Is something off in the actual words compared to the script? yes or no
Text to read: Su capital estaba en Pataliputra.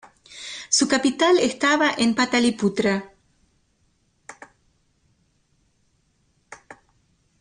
no